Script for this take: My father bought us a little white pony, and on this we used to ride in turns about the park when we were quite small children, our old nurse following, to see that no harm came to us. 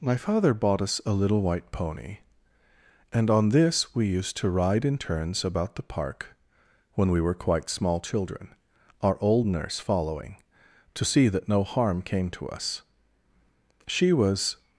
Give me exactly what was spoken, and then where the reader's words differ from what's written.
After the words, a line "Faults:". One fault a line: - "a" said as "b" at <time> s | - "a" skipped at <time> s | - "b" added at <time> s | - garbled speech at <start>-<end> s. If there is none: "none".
My father bought us a little white pony, and on this we used to ride in turns about the park when we were quite small children, our old nurse following, to see that no harm came to us. 'She was
Faults:
- "She was" added at 13.9 s